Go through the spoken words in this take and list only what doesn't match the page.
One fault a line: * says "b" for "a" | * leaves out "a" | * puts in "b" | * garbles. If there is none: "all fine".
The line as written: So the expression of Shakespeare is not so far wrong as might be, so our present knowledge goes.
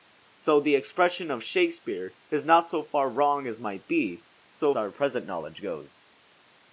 all fine